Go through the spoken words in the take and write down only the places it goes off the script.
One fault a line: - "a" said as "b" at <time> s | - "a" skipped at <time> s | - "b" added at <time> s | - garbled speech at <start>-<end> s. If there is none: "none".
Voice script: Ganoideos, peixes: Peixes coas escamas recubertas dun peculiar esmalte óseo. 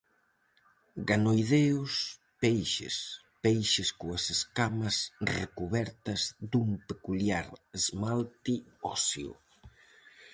none